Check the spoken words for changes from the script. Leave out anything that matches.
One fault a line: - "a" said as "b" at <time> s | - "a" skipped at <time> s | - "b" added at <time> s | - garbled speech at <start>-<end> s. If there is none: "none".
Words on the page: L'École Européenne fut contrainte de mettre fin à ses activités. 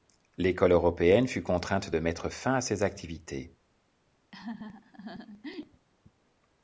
none